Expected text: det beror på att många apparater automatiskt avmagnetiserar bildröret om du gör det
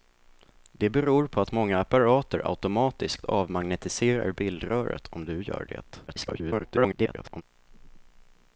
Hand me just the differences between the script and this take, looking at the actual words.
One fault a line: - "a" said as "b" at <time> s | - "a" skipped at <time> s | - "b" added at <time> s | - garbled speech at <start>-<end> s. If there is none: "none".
- garbled speech at 6.1-7.4 s